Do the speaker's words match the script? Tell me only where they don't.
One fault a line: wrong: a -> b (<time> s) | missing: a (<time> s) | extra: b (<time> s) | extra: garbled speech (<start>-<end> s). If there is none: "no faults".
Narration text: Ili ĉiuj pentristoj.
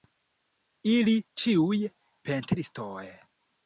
no faults